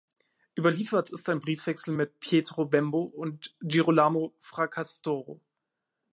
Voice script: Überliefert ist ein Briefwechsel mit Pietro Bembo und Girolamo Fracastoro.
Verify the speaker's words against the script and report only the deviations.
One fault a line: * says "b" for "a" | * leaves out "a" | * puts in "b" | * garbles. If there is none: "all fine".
all fine